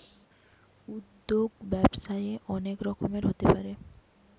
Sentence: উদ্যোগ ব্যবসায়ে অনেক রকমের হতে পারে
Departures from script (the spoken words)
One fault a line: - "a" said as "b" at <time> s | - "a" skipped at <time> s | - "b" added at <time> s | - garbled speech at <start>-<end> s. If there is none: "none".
none